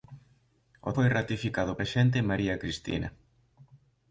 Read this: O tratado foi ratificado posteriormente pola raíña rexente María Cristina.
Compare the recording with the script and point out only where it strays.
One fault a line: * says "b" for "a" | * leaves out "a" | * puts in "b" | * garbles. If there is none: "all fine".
* leaves out "tratado"
* leaves out "posteriormente pola raíña"